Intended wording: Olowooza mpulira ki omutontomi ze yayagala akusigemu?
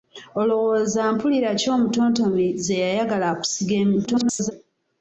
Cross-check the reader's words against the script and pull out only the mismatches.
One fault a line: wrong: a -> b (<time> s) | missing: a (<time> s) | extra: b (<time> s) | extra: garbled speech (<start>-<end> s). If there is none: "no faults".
extra: garbled speech (4.1-4.5 s)